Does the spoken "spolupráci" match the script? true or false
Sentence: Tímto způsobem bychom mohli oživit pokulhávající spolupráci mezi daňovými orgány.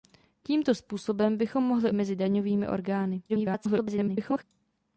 false